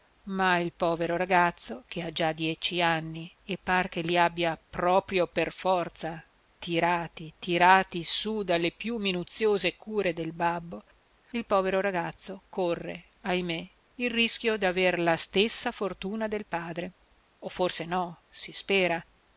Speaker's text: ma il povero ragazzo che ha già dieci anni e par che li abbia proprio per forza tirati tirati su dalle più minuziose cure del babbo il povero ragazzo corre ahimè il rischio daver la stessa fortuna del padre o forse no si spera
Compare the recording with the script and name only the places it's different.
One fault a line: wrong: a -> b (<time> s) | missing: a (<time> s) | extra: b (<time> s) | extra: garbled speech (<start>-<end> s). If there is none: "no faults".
no faults